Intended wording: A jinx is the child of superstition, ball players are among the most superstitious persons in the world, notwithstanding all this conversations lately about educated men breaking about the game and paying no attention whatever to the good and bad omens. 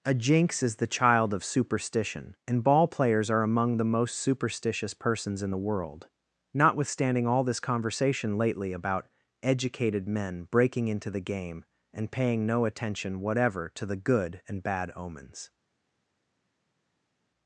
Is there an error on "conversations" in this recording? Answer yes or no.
yes